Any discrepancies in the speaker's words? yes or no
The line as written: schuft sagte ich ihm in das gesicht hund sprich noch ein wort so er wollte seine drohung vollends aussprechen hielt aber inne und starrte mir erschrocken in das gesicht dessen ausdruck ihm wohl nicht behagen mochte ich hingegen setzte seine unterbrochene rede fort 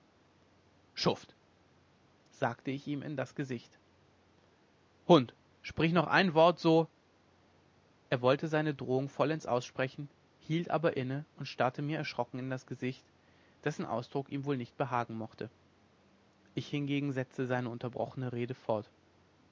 no